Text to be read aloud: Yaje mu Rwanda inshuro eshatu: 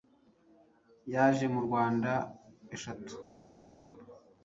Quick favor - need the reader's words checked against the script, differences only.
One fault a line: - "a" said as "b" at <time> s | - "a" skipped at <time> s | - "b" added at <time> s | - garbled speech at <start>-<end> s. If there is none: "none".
- "inshuro" skipped at 2.1 s